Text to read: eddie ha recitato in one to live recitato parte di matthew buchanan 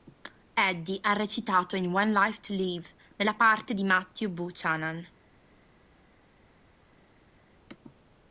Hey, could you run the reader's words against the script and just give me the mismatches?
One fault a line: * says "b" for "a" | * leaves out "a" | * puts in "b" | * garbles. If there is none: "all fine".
* puts in "life"
* says "nella" for "recitato"